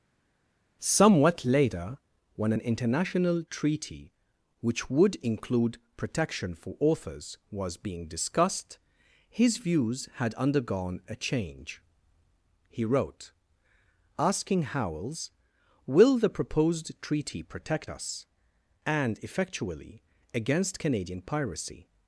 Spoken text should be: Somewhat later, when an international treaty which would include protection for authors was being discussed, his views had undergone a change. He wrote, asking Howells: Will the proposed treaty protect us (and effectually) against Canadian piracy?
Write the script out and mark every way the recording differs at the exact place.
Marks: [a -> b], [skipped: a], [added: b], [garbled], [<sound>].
Somewhat later, when an international treaty which would include protection for authors was being discussed, his views had undergone a change. He wrote, asking Howells: Will the proposed treaty protect us (and effectually) against Canadian piracy?